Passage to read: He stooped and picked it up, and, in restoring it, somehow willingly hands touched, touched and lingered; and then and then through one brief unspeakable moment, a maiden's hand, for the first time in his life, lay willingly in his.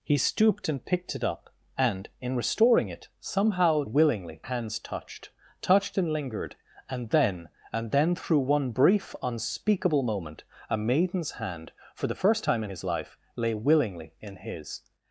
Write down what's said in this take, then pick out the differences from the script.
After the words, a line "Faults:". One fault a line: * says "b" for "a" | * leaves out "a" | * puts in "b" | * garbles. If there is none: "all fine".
He stooped and picked it up, and, in restoring it, somehow willingly hands touched, touched and lingered; and then and then through one brief unspeakable moment, a maiden's hand, for the first time in his life, lay willingly in his.
Faults:
all fine